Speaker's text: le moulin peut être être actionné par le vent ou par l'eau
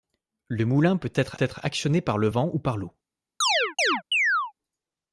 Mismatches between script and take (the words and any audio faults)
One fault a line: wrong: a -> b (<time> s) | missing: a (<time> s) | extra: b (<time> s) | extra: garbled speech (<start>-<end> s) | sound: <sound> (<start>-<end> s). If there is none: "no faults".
sound: chirp (3.4-4.5 s)